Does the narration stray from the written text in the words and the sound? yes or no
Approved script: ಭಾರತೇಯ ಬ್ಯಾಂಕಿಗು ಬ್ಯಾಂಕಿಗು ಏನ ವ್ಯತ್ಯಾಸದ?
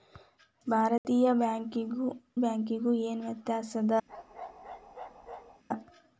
yes